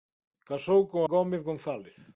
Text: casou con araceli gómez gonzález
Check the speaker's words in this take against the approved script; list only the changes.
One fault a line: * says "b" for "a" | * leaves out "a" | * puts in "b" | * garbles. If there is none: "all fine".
* leaves out "araceli"